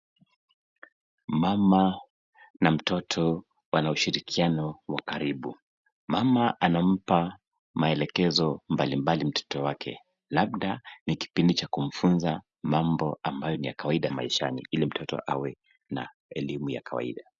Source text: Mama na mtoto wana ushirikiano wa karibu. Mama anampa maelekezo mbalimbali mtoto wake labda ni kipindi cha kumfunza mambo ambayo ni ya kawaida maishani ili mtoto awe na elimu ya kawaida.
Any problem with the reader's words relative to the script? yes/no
no